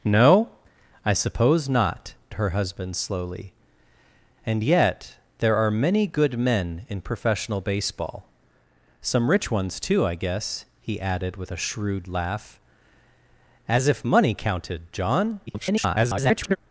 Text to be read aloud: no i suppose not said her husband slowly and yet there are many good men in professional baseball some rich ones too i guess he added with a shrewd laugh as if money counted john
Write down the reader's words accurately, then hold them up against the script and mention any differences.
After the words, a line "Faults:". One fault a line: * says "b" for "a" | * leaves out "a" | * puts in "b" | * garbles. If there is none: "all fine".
no i suppose not her husband slowly and yet there are many good men in professional baseball some rich ones too i guess he added with a shrewd laugh as if money counted john [garbled]
Faults:
* leaves out "said"
* garbles